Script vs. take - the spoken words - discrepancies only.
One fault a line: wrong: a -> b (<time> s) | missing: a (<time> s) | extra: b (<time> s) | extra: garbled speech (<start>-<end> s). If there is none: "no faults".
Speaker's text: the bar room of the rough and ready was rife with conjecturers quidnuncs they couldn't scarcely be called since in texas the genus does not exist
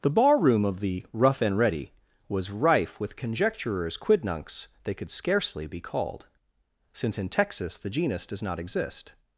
wrong: couldn't -> could (4.9 s)